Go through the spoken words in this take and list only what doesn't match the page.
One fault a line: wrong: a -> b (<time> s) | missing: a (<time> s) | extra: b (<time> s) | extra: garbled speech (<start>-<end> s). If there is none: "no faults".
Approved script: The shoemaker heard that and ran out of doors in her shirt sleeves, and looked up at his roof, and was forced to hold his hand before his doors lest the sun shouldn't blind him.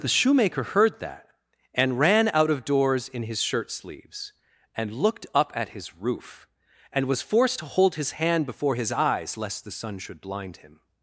wrong: her -> his (3.2 s)
wrong: doors -> eyes (8.9 s)
wrong: shouldn't -> should (10.0 s)